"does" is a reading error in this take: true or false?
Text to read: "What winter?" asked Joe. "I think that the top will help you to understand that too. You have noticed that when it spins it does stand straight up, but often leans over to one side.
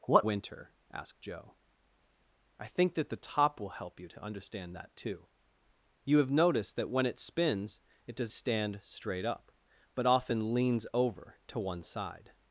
false